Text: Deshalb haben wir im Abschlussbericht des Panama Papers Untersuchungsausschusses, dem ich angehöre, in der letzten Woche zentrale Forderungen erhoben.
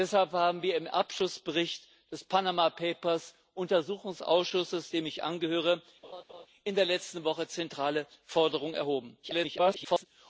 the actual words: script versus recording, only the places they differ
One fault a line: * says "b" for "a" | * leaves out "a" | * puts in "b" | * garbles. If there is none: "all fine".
* garbles